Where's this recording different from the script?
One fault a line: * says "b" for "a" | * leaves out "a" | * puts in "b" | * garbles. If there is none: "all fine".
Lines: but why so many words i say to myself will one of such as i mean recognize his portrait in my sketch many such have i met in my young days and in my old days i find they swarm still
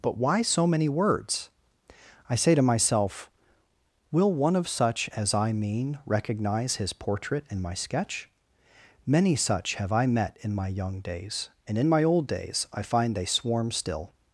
all fine